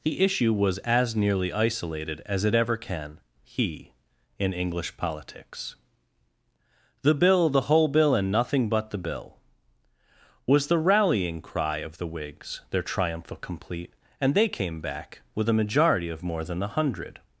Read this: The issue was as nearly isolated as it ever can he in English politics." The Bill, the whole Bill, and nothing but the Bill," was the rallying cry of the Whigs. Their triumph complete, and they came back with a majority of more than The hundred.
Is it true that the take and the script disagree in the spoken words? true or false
false